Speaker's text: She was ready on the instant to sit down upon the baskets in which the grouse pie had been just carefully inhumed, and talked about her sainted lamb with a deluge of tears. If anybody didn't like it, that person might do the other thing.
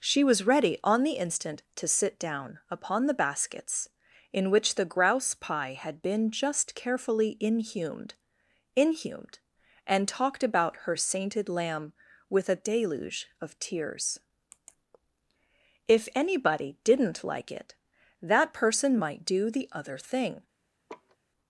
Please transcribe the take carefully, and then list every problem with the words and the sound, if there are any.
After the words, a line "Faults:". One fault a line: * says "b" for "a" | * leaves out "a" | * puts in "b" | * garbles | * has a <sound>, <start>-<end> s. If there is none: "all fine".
She was ready on the instant to sit down upon the baskets in which the grouse pie had been just carefully inhumed inhumed, and talked about her sainted lamb with a deluge of tears. If anybody didn't like it, that person might do the other thing.
Faults:
* puts in "inhumed"
* has a laugh, 20.9-21.2 s